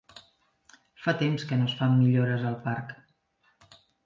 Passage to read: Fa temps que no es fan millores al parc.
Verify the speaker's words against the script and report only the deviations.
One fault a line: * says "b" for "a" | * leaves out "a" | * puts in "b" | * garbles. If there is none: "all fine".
all fine